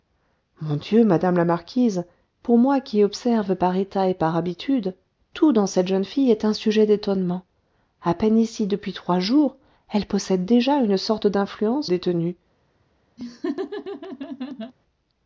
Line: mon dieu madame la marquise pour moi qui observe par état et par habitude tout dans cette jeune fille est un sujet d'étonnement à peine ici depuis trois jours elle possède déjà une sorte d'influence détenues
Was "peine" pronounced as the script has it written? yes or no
yes